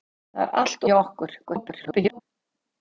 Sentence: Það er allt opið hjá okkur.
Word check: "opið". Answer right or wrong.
wrong